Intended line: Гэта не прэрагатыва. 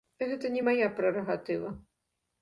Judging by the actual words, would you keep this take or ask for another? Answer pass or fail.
fail